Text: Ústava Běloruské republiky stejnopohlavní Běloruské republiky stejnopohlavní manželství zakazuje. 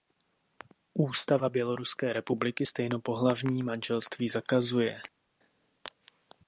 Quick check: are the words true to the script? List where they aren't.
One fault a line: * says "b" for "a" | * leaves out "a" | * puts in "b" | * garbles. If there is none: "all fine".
* leaves out "Běloruské republiky stejnopohlavní"